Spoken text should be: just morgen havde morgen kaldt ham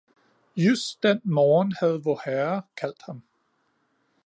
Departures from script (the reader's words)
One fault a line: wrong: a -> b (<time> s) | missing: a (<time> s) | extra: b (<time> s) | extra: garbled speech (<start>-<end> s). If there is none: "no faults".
extra: den (1.0 s)
wrong: morgen -> vorherre (2.0 s)